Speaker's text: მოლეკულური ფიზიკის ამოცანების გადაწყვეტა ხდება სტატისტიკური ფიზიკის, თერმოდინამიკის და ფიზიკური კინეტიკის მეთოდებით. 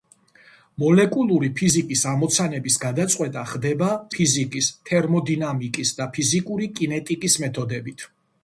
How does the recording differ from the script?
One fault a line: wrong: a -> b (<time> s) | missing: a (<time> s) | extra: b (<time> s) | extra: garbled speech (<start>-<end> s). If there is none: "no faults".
missing: სტატისტიკური (3.9 s)